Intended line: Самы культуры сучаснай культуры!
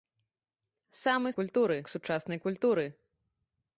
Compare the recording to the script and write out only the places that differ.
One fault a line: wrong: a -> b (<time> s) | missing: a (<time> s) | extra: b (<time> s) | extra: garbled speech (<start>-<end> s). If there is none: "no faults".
no faults